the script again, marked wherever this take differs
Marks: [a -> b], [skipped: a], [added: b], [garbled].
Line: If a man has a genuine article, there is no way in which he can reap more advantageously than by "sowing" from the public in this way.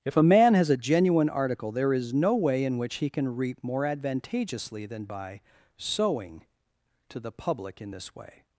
If a man has a genuine article, there is no way in which he can reap more advantageously than by "sowing" [from -> to] the public in this way.